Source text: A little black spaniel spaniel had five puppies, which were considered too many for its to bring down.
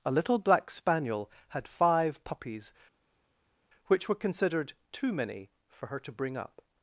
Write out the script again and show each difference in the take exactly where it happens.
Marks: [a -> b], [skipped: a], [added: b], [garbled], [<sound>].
A little black spaniel [skipped: spaniel] had five puppies, which were considered too many for [its -> her] to bring [down. -> up]